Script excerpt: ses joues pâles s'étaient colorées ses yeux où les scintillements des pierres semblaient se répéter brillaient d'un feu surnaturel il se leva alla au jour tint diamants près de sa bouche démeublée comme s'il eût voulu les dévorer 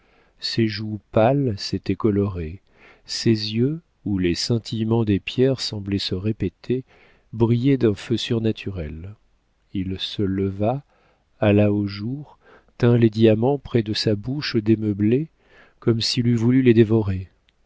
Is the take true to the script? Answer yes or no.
no